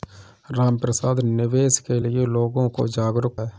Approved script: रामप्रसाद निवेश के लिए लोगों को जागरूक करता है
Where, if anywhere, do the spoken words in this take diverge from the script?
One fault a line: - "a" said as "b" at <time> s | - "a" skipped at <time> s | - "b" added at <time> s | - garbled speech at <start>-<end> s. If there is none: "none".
- "करता" skipped at 3.4 s